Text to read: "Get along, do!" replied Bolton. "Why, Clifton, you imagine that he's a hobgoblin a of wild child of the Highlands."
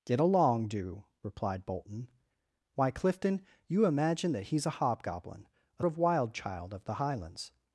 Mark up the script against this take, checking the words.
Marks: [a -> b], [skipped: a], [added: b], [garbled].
"Get along, do!" replied Bolton. "Why, Clifton, you imagine that he's a hobgoblin a of wild child of the Highlands."